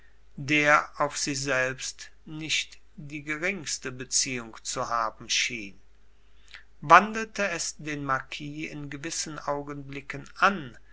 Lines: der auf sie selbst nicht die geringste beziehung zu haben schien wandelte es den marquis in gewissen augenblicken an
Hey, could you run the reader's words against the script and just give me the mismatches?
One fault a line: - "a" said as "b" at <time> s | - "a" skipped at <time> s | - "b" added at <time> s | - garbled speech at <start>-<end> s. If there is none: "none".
none